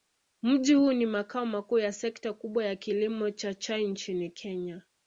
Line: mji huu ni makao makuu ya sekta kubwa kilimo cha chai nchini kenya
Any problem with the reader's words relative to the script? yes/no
yes